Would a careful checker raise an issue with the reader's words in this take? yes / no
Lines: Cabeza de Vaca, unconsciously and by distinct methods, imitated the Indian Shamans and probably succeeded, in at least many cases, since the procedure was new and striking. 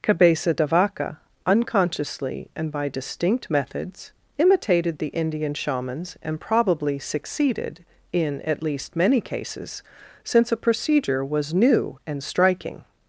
yes